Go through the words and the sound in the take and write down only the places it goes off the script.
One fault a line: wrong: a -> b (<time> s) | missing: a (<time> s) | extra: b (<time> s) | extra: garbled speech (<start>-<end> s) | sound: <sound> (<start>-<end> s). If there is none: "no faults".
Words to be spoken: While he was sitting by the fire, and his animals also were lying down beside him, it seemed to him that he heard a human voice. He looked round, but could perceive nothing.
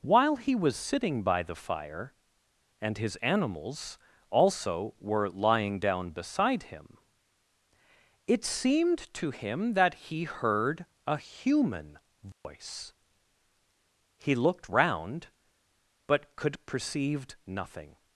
sound: dropout (12.3-12.4 s)